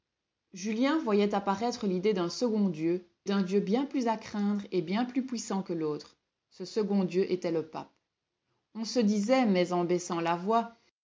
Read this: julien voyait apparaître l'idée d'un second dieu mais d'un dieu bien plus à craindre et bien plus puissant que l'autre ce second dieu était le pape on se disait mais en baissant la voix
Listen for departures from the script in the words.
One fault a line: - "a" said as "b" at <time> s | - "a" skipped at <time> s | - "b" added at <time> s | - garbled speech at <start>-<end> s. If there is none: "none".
- "mais" skipped at 3.0 s